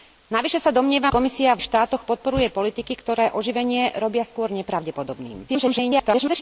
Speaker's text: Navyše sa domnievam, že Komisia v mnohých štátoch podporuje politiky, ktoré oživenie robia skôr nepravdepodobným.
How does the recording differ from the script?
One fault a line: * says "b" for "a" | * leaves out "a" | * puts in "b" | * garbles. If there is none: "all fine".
* leaves out "že"
* leaves out "mnohých"
* garbles